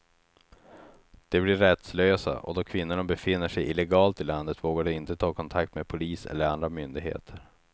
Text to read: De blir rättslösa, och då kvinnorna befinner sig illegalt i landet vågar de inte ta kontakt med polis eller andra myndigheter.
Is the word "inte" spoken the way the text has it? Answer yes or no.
yes